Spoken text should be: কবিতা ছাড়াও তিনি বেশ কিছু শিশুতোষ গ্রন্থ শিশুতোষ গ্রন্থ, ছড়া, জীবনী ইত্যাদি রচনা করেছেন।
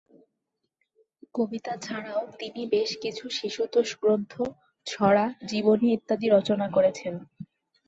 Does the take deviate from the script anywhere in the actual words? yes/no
yes